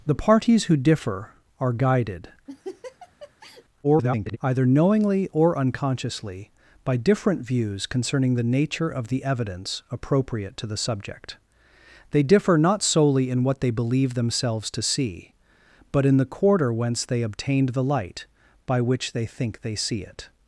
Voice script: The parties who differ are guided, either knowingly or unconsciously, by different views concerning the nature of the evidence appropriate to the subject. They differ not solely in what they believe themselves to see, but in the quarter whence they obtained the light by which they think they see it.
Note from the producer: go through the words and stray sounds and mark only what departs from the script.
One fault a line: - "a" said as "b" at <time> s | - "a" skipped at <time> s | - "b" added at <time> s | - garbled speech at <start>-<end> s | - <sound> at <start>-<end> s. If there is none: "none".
- laugh at 2.5-3.6 s
- garbled speech at 3.8-4.4 s